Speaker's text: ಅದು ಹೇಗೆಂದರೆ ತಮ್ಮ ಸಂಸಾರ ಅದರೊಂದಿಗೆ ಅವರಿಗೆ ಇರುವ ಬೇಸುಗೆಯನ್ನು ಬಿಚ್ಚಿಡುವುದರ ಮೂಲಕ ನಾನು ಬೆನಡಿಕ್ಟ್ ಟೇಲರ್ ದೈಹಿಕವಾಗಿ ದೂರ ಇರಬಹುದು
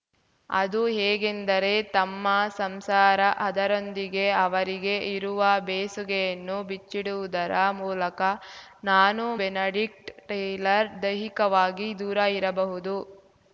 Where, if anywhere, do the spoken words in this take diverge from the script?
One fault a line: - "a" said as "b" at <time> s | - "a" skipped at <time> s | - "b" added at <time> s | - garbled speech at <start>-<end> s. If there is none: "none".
none